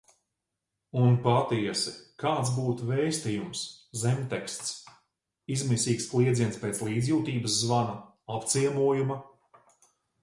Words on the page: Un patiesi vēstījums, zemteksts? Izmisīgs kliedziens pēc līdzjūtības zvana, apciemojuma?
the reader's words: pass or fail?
fail